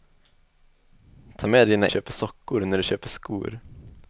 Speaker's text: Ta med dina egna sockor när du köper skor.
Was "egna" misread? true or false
true